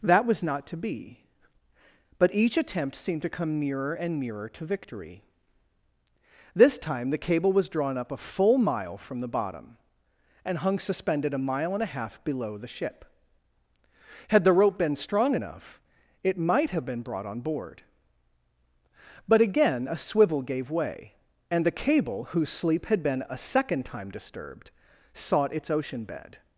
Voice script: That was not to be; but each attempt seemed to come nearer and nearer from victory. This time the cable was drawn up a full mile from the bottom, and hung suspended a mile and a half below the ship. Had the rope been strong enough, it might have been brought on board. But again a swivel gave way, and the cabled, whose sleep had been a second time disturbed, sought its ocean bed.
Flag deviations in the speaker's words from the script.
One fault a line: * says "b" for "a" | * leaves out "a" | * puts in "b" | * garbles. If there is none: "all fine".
* says "to" for "from"
* says "cable" for "cabled"